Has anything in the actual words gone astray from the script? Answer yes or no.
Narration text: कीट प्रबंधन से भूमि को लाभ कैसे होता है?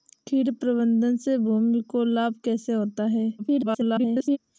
yes